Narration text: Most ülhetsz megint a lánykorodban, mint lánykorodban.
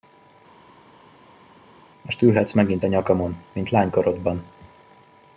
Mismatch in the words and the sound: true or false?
true